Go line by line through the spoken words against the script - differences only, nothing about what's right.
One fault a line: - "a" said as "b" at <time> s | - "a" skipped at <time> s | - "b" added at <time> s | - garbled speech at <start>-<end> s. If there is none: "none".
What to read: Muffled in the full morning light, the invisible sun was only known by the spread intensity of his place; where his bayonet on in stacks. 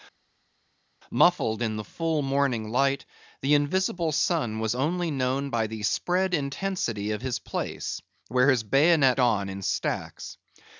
none